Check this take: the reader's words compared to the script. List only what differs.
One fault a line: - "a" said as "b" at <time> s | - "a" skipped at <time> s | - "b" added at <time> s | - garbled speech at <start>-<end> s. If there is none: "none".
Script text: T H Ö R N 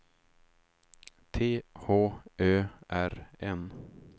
none